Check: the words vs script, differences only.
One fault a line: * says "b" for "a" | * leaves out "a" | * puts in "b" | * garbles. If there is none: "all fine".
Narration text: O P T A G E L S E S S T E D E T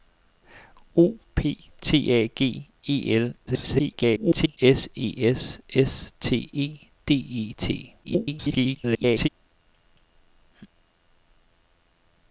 * garbles
* garbles